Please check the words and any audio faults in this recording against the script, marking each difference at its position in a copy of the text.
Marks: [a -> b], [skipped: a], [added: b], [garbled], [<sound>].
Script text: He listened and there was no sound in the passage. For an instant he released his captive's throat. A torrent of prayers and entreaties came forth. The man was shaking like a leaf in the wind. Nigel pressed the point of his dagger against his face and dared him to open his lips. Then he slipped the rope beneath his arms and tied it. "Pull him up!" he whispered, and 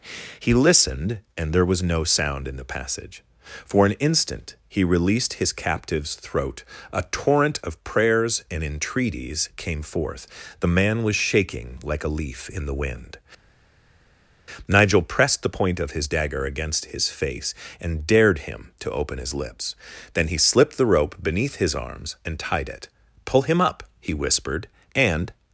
He listened and there was no sound in the passage. For an instant he released his captive's throat. A torrent of prayers and entreaties came forth. The man was shaking like a leaf in the wind. Nigel pressed the point of his dagger against his face and dared him to open his lips. Then he slipped the rope beneath his arms and tied it. "Pull him up!" he whispered, and